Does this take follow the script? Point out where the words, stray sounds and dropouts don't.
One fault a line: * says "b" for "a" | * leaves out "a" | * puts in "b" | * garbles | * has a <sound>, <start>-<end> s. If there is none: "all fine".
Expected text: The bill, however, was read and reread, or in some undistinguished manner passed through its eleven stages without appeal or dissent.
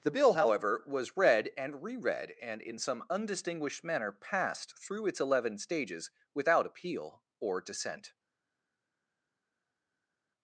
* says "and" for "or"